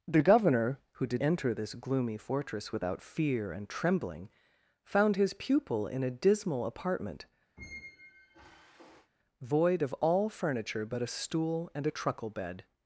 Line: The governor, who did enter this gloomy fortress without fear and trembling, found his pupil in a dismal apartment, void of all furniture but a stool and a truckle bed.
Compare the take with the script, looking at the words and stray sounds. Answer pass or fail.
fail